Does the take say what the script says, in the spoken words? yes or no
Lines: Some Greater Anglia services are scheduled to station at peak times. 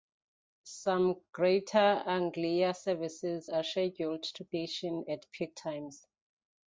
yes